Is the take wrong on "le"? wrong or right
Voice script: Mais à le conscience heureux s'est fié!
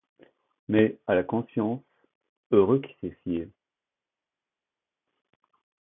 wrong